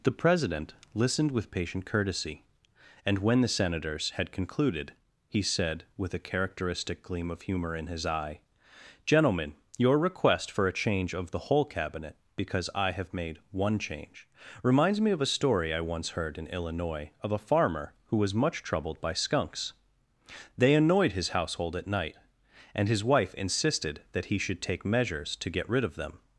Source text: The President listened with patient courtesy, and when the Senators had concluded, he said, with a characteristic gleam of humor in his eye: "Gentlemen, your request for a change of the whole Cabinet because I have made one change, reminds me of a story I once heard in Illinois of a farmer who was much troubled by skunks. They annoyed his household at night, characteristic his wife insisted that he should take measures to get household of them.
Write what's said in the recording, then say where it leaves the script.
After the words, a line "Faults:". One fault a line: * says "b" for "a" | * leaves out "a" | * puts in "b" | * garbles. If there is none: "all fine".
The President listened with patient courtesy, and when the Senators had concluded, he said, with a characteristic gleam of humor in his eye: "Gentlemen, your request for a change of the whole Cabinet because I have made one change, reminds me of a story I once heard in Illinois of a farmer who was much troubled by skunks. They annoyed his household at night, and his wife insisted that he should take measures to get rid of them.
Faults:
* says "and" for "characteristic"
* says "rid" for "household"